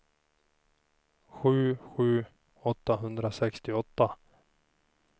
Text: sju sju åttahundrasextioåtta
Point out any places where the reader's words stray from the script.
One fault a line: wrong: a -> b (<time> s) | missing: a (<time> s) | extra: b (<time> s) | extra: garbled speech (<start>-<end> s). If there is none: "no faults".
no faults